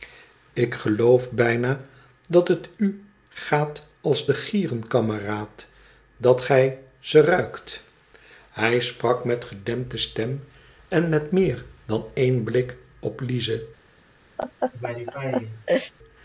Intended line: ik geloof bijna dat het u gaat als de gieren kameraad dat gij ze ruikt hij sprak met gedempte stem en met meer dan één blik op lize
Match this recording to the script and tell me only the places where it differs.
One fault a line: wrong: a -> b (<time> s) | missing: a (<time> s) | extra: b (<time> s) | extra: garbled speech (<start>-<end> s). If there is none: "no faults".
no faults